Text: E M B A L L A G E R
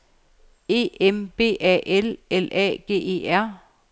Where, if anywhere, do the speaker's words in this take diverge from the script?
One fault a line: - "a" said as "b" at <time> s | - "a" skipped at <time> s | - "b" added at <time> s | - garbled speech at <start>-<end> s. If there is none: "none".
none